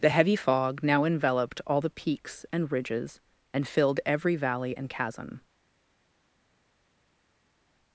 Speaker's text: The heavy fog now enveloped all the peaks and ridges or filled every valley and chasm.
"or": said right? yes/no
no